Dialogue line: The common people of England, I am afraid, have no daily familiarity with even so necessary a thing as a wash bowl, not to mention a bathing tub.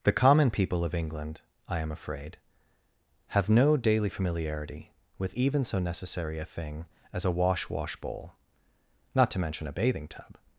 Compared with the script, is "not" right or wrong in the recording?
right